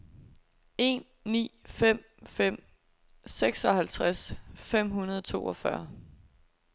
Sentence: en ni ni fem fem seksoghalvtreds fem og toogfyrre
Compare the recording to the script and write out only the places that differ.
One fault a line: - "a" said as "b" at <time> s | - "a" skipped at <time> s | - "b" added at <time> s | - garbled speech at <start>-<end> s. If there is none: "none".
- "ni" skipped at 1.6 s
- "hundrede" added at 4.9 s